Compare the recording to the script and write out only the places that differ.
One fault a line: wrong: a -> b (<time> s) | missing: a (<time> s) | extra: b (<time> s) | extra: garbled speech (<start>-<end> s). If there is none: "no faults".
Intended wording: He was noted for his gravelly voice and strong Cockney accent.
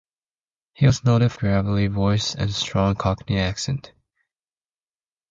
missing: for his (1.3 s)